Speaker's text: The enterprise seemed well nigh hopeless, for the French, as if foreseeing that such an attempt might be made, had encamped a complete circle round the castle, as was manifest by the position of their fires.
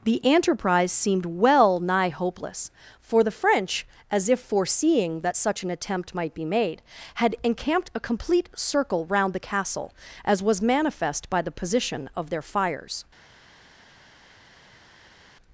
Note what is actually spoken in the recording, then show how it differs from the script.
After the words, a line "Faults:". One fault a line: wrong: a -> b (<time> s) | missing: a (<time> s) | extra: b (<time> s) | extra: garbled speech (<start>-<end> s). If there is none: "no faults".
The enterprise seemed well nigh hopeless, for the French, as if foreseeing that such an attempt might be made, had encamped a complete circle round the castle, as was manifest by the position of their fires.
Faults:
no faults